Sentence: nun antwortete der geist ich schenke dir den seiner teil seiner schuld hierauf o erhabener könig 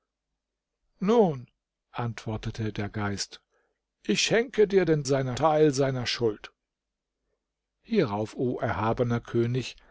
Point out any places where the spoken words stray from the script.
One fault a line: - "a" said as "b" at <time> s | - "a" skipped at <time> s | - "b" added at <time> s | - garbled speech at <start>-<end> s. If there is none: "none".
none